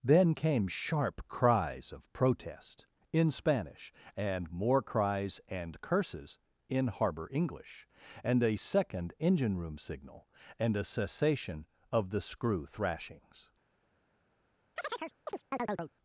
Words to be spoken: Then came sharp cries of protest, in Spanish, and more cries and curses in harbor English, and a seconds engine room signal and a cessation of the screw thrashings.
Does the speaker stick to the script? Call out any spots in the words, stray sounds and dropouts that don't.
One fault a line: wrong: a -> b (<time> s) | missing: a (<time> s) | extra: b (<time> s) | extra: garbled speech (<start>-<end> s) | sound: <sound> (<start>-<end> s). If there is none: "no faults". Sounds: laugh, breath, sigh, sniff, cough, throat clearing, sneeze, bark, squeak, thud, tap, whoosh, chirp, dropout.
wrong: seconds -> second (8.5 s)
sound: chirp (14.8-15.9 s)